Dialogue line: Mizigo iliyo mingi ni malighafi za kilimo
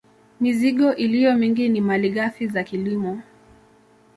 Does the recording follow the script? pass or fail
pass